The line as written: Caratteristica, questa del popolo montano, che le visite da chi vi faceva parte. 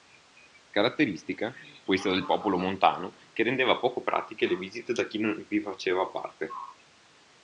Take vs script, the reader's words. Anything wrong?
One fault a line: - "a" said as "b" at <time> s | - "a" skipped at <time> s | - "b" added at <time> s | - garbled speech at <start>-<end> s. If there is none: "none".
- "rendeva poco pratiche" added at 3.4 s
- "non" added at 5.2 s